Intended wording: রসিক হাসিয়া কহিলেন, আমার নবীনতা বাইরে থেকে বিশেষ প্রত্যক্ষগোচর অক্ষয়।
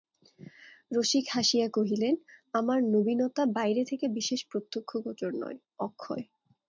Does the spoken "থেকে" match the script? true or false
true